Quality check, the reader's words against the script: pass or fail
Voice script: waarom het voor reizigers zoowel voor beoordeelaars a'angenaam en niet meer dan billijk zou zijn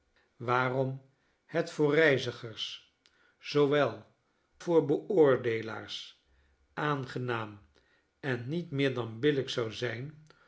pass